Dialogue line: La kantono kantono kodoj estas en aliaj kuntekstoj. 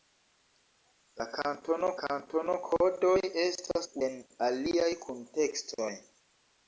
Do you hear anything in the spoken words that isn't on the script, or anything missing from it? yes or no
no